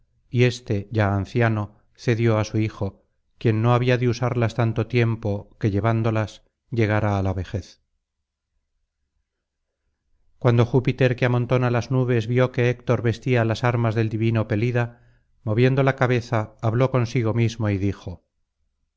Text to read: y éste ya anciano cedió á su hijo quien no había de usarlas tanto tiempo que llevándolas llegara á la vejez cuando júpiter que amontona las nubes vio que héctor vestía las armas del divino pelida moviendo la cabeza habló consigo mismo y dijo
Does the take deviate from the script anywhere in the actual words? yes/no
no